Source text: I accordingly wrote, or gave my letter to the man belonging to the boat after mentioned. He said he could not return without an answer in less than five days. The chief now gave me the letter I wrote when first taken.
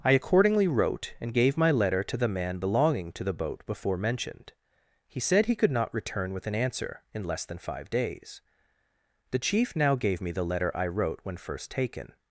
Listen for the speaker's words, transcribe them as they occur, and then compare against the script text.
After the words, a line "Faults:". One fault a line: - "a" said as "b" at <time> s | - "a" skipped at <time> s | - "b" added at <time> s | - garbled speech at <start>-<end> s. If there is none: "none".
I accordingly wrote, and gave my letter to the man belonging to the boat before mentioned. He said he could not return with an answer in less than five days. The chief now gave me the letter I wrote when first taken.
Faults:
- "or" said as "and" at 1.2 s
- "after" said as "before" at 3.6 s
- "without" said as "with" at 6.3 s